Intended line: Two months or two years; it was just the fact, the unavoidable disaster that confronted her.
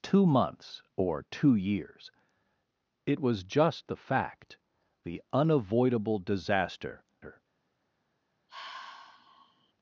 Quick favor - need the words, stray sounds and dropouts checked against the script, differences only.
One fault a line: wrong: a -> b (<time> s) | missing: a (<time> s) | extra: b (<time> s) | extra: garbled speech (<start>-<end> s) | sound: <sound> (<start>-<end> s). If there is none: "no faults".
missing: that confronted (7.0 s)
sound: sigh (8.5-9.7 s)